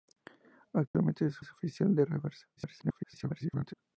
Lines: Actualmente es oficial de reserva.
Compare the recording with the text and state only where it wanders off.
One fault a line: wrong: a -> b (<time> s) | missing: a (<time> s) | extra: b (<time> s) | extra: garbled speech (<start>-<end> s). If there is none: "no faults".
extra: es (1.4 s)
extra: garbled speech (2.6-3.7 s)